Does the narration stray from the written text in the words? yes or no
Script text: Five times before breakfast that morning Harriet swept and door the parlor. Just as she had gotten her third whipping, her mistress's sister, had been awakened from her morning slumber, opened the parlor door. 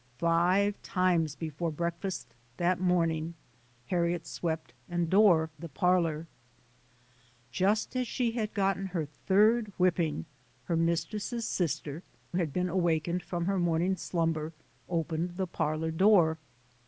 no